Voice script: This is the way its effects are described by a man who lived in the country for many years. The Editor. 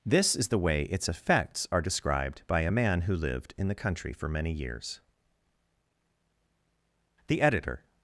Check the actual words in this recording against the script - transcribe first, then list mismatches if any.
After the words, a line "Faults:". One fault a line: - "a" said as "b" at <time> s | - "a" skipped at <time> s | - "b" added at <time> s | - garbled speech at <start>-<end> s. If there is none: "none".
This is the way its effects are described by a man who lived in the country for many years. The Editor.
Faults:
none